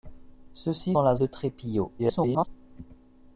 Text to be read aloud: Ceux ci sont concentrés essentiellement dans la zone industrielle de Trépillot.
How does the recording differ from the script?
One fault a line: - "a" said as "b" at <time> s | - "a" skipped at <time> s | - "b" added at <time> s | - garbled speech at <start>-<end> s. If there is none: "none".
- "sont concentrés essentiellement" skipped at 0.9 s
- "zone industrielle" skipped at 1.2 s
- garbled speech at 2.0-2.5 s